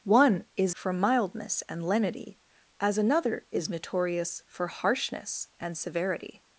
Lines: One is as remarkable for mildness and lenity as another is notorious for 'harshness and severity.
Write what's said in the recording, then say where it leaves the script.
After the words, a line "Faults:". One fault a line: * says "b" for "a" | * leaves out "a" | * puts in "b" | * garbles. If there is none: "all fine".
One is for mildness and lenity as another is notorious for 'harshness and severity.
Faults:
* leaves out "as remarkable"